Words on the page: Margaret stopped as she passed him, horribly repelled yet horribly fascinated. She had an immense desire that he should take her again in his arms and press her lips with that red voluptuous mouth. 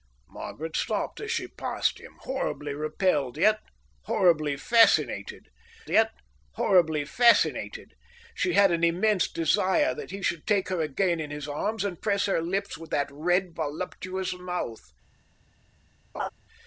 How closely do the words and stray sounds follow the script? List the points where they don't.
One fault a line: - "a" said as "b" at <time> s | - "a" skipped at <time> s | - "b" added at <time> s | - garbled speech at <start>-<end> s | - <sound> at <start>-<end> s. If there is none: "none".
- "yet horribly fascinated" added at 5.9 s
- laugh at 16.1-16.3 s